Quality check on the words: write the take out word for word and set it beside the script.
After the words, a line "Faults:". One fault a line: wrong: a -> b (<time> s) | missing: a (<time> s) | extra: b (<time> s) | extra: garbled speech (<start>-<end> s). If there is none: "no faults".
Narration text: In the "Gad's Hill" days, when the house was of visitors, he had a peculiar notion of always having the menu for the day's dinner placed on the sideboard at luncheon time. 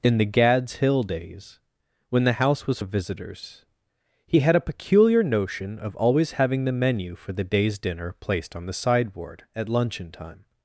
In the "Gad's Hill" days, when the house was of visitors, he had a peculiar notion of always having the menu for the day's dinner placed on the sideboard at luncheon time.
Faults:
no faults